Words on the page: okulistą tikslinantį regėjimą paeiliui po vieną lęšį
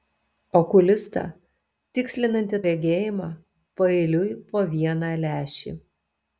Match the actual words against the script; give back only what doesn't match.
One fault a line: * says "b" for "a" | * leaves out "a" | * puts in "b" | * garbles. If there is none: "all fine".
all fine